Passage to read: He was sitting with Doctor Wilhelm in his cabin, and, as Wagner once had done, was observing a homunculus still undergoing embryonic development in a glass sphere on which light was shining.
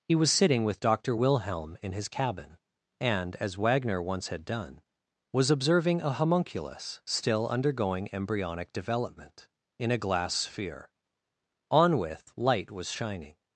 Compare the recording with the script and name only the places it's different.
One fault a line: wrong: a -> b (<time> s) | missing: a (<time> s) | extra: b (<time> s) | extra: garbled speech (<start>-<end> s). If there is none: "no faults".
wrong: which -> with (12.0 s)